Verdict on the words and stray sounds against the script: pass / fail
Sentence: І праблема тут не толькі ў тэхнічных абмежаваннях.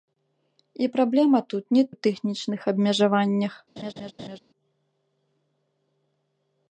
fail